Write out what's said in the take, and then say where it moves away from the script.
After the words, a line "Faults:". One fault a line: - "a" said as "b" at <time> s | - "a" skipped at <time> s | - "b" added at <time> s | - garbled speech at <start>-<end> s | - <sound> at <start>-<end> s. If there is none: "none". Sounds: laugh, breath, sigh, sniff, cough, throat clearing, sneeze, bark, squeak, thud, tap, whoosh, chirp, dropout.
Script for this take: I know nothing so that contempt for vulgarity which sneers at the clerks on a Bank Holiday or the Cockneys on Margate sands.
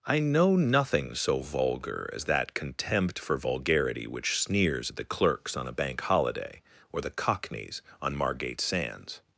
I know nothing so vulgar as that contempt for vulgarity which sneers at the clerks on a Bank Holiday or the Cockneys on Margate sands.
Faults:
- "vulgar as" added at 1.4 s